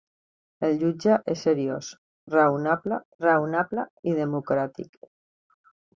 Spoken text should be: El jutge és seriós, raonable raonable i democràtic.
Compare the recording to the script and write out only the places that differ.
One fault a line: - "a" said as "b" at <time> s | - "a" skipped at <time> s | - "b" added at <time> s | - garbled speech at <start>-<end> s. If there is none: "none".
none